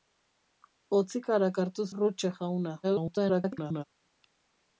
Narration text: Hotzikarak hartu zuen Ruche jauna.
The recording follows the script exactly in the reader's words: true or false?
false